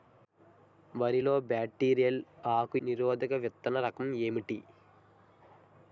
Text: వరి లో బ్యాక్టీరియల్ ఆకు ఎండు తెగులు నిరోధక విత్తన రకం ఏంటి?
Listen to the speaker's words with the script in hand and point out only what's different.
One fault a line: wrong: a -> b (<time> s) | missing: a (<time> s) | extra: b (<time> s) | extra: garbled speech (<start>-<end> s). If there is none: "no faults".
missing: ఎండు తెగులు (2.8 s)